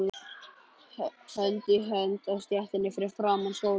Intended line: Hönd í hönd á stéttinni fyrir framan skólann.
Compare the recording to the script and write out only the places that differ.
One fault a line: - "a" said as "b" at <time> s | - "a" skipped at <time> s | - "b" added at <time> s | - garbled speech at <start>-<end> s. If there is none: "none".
none